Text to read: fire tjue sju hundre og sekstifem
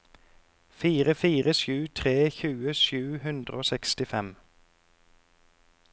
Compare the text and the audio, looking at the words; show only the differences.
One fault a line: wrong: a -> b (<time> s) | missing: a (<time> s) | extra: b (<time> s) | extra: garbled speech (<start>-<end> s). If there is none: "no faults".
extra: fire sju tre (1.2 s)